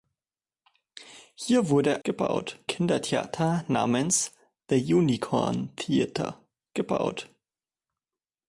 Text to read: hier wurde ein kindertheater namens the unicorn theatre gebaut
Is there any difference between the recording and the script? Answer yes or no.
yes